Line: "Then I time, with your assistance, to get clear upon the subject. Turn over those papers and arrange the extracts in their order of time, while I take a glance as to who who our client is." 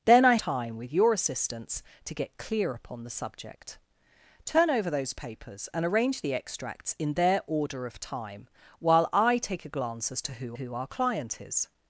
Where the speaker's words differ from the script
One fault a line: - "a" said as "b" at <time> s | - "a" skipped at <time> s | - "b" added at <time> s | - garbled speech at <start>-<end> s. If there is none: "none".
none